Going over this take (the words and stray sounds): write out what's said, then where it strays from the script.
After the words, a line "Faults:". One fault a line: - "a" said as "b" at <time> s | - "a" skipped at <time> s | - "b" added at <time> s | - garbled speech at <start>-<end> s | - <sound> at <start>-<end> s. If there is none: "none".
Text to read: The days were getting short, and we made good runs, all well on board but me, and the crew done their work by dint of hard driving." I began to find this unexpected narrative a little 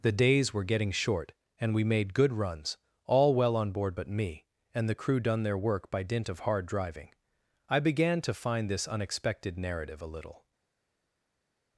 The days were getting short, and we made good runs, all well on board but me, and the crew done their work by dint of hard driving." I began to find this unexpected narrative a little
Faults:
none